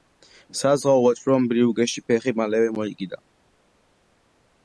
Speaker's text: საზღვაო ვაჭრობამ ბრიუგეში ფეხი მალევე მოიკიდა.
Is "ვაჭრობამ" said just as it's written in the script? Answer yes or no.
yes